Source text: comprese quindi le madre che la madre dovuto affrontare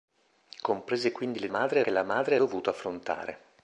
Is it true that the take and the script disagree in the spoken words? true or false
false